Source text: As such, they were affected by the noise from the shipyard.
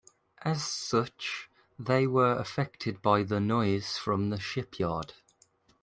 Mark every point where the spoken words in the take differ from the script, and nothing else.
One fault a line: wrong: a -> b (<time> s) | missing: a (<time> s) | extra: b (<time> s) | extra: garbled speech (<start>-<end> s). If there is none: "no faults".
no faults